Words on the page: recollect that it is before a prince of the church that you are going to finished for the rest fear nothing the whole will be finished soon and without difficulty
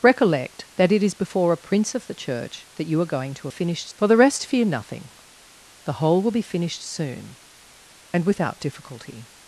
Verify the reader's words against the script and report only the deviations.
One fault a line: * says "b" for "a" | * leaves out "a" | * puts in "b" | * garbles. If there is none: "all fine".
all fine